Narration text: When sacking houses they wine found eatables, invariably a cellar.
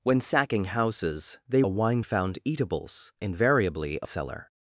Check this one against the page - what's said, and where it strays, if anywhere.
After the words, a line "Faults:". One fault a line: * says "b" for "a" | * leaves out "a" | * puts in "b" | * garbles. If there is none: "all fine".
When sacking houses they wine found eatables, invariably a cellar.
Faults:
all fine